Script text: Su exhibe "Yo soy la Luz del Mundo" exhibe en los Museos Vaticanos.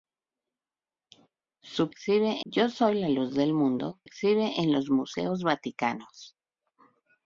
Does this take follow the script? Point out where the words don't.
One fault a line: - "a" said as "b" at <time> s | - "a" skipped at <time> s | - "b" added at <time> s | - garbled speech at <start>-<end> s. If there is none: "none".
none